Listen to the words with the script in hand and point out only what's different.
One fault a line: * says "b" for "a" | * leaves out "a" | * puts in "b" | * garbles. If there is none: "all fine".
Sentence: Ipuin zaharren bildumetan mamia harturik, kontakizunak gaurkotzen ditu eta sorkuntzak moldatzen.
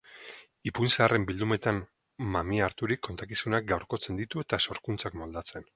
all fine